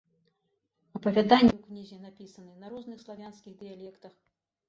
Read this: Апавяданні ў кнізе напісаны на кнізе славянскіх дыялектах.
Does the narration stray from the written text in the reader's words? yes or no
yes